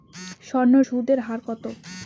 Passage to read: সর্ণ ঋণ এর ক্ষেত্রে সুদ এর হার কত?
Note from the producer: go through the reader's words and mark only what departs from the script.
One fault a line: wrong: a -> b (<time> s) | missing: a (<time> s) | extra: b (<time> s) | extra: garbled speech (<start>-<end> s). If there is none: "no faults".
missing: ঋণ এর ক্ষেত্রে (0.7 s)